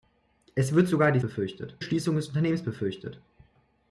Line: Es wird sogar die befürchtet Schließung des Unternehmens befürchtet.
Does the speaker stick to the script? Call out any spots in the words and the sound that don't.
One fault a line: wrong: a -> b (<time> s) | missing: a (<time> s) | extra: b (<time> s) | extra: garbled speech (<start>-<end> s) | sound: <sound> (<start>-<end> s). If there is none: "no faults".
no faults